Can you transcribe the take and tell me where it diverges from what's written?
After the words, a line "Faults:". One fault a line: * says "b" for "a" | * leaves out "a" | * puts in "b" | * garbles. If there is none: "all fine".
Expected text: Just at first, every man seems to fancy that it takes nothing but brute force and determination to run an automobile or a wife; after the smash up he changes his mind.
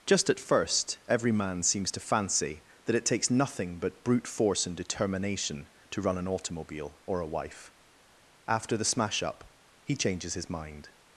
Just at first, every man seems to fancy that it takes nothing but brute force and determination to run an automobile or a wife; after the smash up he changes his mind.
Faults:
all fine